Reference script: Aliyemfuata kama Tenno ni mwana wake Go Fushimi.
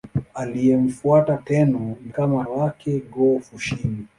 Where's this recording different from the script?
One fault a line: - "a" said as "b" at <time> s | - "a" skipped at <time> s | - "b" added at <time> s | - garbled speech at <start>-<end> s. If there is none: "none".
- "kama" skipped at 1.4 s
- "mwana" said as "kama" at 2.1 s